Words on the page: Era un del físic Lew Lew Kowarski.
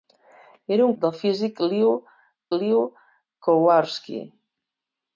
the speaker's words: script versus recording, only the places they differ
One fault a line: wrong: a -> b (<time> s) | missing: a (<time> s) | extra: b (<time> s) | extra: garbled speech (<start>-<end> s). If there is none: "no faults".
no faults